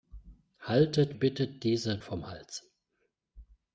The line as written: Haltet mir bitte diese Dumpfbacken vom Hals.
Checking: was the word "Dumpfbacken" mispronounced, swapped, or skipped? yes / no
yes